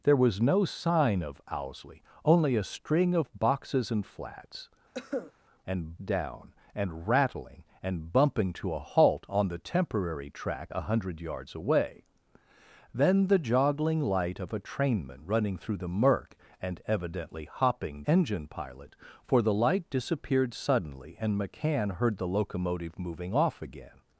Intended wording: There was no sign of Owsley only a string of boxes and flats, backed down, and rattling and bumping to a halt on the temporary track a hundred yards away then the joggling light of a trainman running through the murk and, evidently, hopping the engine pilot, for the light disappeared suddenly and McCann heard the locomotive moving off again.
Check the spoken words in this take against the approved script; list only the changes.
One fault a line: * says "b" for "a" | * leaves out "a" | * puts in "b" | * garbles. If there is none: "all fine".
* says "and" for "backed"
* leaves out "the"